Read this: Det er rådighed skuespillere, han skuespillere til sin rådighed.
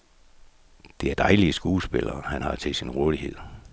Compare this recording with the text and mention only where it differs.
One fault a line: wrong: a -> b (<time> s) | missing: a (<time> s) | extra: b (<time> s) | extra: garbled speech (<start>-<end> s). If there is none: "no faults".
wrong: rådighed -> dejlige (1.1 s)
wrong: skuespillere -> har (2.4 s)